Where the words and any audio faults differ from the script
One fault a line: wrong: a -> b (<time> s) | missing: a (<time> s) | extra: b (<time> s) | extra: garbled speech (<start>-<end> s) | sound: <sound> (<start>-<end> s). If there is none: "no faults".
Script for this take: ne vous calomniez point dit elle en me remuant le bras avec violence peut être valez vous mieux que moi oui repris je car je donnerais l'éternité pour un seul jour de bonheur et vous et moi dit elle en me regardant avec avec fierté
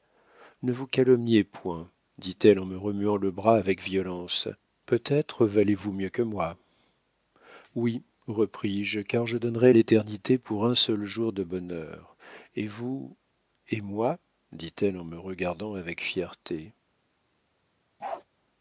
missing: avec (16.0 s)
sound: bark (18.0-18.2 s)